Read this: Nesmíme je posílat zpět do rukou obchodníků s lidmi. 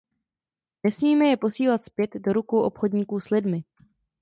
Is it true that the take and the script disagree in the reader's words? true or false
false